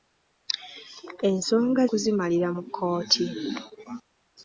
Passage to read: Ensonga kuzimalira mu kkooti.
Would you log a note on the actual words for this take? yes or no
no